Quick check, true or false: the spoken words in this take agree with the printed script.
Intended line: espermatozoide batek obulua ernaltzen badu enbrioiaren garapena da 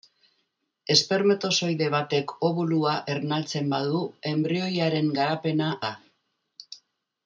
true